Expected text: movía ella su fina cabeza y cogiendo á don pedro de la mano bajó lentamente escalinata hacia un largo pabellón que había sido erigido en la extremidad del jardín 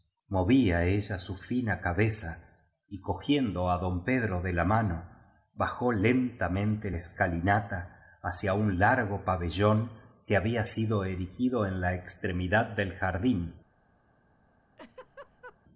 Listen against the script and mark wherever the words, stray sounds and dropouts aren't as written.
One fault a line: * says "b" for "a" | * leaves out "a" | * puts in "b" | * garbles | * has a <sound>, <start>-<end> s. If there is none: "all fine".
* has a laugh, 14.8-15.6 s